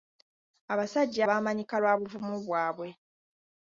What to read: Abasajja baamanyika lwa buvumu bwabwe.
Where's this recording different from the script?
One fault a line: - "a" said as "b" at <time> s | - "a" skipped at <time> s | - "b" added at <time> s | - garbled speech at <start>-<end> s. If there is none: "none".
none